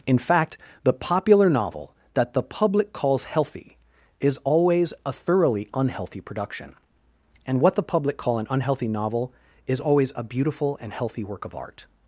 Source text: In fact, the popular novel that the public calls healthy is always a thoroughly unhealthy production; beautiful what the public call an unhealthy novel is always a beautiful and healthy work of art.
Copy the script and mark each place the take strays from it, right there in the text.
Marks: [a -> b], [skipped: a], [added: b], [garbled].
In fact, the popular novel that the public calls healthy is always a thoroughly unhealthy production; [beautiful -> and] what the public call an unhealthy novel is always a beautiful and healthy work of art.